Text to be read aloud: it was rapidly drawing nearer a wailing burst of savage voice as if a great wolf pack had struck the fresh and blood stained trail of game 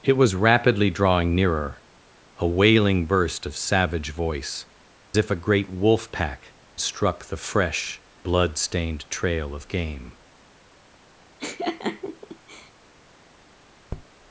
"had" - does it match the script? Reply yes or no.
no